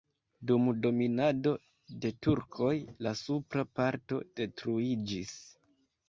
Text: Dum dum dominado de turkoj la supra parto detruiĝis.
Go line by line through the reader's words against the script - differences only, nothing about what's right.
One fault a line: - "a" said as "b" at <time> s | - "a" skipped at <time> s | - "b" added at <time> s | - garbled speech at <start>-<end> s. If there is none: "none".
- "dum" skipped at 0.6 s